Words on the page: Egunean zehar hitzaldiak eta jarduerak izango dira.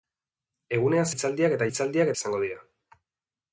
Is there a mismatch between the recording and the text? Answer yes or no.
yes